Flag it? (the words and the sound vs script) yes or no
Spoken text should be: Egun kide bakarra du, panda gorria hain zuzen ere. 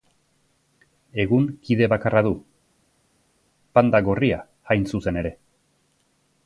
no